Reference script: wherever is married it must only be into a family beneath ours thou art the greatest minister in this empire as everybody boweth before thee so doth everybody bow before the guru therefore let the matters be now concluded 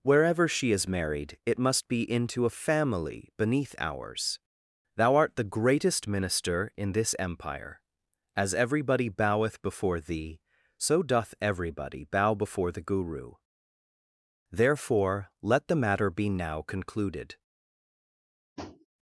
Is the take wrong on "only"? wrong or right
wrong